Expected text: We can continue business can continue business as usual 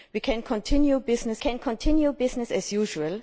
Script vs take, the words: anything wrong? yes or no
no